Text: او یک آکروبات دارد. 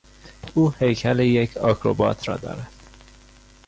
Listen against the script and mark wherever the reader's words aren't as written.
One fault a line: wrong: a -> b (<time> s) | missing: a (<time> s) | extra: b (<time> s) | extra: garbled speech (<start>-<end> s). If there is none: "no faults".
extra: هیکل (0.8 s)
extra: را (2.3 s)